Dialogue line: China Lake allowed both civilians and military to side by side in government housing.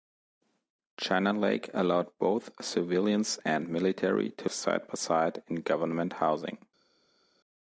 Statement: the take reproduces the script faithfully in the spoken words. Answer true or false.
true